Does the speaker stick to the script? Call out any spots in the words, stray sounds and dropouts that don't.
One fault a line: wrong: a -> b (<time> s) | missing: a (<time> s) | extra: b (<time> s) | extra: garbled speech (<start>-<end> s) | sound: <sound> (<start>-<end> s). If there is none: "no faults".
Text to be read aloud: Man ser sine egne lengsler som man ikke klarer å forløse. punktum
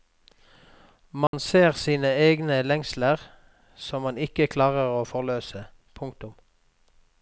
sound: dropout (1.3-1.3 s)